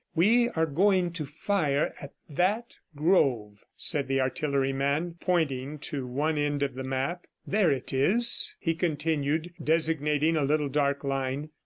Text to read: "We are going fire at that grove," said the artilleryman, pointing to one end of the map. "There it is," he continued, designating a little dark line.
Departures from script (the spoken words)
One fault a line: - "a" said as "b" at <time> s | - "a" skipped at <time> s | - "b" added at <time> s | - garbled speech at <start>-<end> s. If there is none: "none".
- "to" added at 1.1 s